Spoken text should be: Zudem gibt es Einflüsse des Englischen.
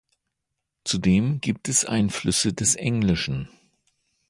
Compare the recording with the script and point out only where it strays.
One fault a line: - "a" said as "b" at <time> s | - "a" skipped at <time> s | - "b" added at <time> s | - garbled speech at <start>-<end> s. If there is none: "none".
none